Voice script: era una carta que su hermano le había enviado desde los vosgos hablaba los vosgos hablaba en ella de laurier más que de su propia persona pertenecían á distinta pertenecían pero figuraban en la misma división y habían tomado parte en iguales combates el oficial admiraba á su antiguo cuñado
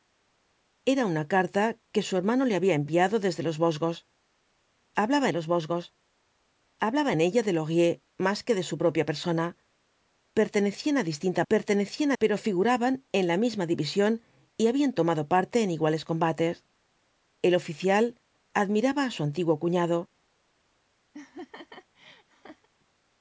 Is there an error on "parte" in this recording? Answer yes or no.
no